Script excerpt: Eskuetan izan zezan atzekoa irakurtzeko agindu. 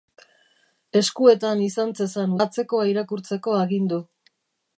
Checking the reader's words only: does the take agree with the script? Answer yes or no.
yes